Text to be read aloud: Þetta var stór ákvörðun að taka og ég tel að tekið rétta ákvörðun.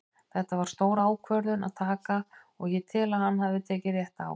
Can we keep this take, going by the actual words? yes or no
no